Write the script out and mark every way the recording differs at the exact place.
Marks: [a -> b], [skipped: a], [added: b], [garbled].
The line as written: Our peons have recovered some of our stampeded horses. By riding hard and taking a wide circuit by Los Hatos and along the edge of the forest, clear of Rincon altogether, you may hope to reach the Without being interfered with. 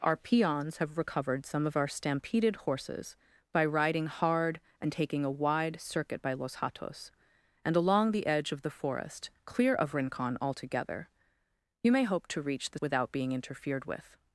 Our peons have recovered some of our stampeded horses. By riding hard and taking a wide circuit by Los Hatos and along the edge of the forest, clear of Rincon altogether, you may hope to reach the Without being interfered with.